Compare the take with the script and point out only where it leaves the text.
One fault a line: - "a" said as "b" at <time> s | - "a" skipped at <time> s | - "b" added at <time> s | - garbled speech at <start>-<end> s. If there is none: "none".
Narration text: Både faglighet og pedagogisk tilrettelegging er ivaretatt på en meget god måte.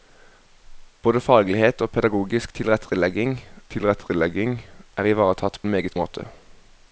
- "tilrettelegging" added at 3.7 s
- "på" skipped at 5.6 s
- "god" skipped at 5.9 s